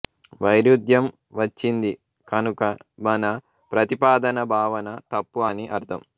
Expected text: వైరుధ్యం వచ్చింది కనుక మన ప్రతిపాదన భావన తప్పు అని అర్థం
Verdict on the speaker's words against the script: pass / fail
pass